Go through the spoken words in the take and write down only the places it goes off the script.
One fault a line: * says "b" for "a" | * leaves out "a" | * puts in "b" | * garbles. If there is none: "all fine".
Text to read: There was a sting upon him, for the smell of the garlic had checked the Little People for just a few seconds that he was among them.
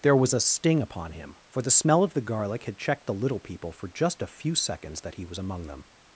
all fine